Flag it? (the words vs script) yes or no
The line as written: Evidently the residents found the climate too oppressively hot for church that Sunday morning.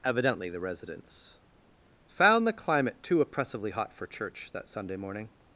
no